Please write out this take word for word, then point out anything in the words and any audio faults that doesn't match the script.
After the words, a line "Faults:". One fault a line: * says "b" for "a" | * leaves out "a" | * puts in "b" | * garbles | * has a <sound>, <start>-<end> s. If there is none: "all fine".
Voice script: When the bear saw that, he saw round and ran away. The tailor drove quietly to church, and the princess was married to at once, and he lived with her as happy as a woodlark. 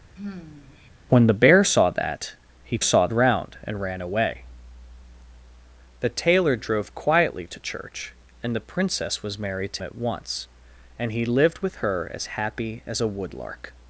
When the bear saw that, he saw round and ran away. The tailor drove quietly to church, and the princess was married to at once, and he lived with her as happy as a woodlark.
Faults:
* has a sigh, 0.2-0.9 s